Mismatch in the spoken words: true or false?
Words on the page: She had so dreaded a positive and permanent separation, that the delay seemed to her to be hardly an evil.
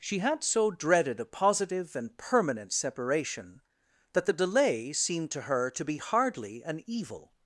false